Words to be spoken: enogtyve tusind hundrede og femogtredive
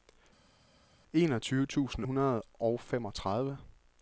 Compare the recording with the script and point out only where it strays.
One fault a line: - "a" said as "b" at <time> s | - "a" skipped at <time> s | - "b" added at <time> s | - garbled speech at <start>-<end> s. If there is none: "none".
none